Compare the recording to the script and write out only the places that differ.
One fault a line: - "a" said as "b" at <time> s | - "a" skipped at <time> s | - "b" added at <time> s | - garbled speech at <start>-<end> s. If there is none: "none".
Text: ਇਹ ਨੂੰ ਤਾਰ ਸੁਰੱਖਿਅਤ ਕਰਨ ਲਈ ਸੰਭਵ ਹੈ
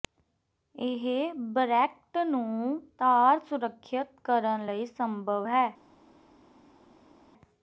- "ਬਰੈਕਟ" added at 1.5 s